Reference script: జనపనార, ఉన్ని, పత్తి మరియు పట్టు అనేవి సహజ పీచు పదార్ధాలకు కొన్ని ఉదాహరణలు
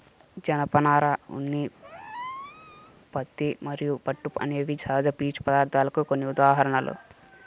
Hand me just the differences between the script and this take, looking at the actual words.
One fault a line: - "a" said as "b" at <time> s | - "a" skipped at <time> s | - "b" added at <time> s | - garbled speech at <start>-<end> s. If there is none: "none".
none